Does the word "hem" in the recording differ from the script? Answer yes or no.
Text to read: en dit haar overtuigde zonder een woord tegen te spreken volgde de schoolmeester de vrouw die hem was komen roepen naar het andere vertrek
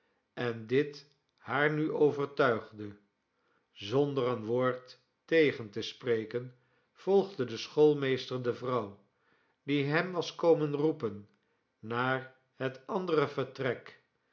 no